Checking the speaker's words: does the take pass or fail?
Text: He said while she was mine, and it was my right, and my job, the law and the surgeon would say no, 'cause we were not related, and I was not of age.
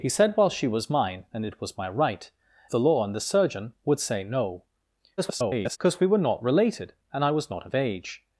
fail